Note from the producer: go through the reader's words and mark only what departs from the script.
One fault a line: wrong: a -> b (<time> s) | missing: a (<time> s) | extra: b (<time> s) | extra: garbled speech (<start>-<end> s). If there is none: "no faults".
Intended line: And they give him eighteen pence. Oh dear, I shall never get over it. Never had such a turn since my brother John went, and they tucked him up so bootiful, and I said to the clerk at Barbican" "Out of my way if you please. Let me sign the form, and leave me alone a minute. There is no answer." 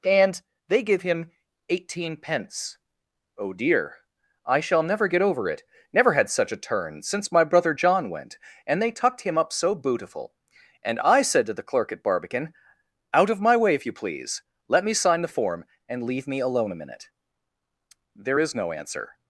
no faults